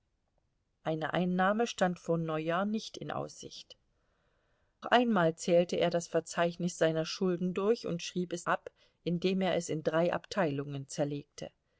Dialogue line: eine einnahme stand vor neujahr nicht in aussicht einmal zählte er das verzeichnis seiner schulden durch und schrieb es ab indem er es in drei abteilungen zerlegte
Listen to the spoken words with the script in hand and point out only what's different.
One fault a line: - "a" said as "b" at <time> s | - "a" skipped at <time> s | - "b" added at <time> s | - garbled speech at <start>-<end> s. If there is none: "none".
none